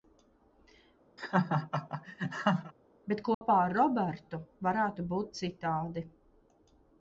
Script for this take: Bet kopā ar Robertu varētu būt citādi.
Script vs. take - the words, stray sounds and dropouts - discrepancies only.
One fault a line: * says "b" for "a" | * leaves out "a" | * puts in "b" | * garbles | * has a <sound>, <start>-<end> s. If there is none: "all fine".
* has a laugh, 1.2-2.7 s
* has a dropout, 3.3-3.4 s